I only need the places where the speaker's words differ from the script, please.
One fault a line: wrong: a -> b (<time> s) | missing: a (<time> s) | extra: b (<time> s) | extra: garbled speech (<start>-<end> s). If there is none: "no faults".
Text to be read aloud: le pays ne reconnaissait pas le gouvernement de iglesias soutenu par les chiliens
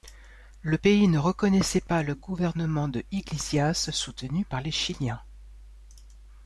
no faults